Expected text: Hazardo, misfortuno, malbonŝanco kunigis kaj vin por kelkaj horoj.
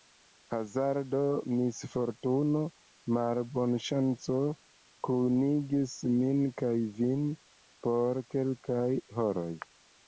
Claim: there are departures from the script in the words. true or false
true